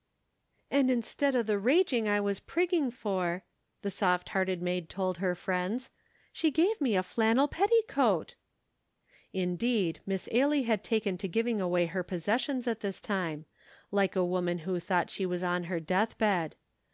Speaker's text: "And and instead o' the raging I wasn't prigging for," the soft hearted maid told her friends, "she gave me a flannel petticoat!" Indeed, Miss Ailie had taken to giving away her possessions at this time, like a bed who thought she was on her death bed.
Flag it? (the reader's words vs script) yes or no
yes